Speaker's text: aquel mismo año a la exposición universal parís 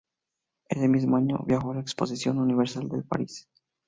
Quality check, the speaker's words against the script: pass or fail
fail